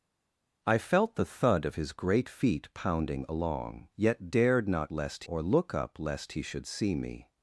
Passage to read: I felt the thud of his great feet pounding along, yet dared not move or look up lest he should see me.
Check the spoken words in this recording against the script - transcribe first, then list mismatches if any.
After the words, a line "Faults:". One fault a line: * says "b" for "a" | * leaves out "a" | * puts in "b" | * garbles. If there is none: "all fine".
I felt the thud of his great feet pounding along, yet dared not lest or look up lest he should see me.
Faults:
* says "lest" for "move"